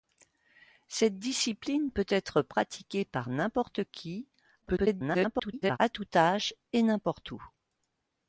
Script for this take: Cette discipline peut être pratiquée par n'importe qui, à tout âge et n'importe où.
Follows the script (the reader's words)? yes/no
no